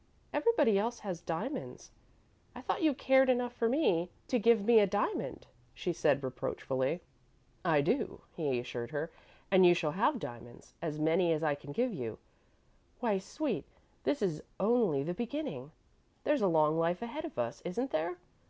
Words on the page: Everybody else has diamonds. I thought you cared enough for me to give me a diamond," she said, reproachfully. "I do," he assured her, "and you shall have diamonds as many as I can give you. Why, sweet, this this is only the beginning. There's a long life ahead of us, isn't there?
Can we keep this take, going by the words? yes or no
no